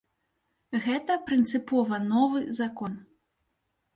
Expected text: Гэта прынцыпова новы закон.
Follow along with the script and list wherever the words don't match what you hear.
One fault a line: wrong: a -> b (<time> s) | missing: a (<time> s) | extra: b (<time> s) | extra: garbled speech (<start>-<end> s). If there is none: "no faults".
no faults